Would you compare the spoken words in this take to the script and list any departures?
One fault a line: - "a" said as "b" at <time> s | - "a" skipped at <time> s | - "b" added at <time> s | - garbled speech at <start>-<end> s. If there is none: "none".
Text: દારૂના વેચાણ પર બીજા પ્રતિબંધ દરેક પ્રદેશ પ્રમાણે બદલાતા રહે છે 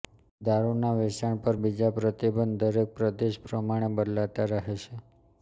none